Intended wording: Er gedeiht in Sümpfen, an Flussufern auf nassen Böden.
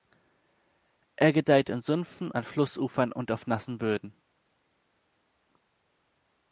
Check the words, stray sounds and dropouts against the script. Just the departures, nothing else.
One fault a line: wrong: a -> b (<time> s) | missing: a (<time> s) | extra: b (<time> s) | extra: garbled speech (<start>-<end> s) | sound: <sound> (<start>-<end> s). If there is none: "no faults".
extra: und (3.1 s)